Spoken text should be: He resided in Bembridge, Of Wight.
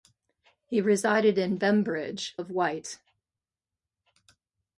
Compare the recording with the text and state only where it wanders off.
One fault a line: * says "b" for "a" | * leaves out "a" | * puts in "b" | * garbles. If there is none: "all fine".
all fine